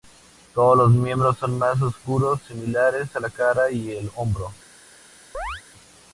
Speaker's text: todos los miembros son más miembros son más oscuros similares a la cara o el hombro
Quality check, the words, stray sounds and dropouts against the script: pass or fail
fail